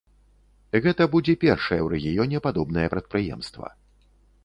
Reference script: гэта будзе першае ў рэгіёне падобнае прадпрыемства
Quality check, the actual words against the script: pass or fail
pass